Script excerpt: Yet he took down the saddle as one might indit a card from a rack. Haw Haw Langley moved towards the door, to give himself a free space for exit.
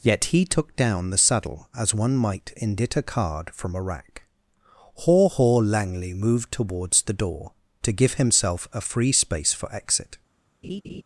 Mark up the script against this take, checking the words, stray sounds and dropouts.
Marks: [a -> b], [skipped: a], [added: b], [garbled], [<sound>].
Yet he took down the saddle as one might indit a card from a rack. Haw Haw Langley moved towards the door, to give himself a free space for exit. [laugh]